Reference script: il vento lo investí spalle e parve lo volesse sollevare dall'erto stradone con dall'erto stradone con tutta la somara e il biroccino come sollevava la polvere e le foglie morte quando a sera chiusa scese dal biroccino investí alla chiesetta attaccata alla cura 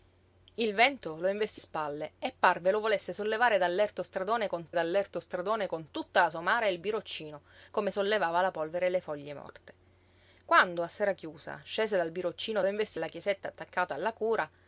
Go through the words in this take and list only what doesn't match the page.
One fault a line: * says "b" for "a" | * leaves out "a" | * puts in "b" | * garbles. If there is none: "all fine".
all fine